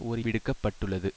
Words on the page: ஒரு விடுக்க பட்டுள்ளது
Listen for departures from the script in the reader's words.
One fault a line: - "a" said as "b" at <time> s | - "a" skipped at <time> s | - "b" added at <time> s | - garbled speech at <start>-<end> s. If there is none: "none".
none